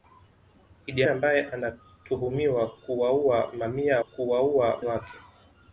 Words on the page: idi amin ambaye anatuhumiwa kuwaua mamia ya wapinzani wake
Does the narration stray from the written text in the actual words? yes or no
yes